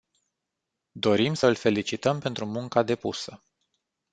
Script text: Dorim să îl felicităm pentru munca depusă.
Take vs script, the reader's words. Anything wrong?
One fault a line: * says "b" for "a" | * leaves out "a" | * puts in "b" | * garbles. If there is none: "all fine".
all fine